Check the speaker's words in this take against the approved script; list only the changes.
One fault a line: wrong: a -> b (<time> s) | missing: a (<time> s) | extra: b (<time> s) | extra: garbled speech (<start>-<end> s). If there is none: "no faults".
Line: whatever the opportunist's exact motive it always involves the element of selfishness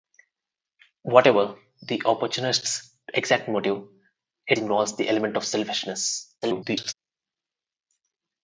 missing: always (4.6 s)
extra: garbled speech (6.4-6.9 s)